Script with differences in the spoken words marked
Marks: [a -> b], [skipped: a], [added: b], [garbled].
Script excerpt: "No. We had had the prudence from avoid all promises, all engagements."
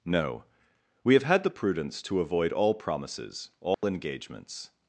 "No. We [had -> have] had the prudence [from -> to] avoid all promises, all engagements."